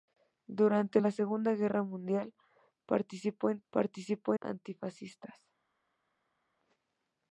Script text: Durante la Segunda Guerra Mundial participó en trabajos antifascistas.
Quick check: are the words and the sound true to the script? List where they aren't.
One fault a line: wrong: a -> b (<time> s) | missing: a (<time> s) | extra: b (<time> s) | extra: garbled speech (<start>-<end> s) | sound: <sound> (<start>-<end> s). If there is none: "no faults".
wrong: trabajos -> participó (3.7 s)